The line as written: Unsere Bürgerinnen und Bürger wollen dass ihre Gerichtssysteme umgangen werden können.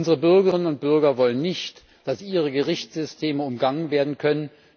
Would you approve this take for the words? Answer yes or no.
no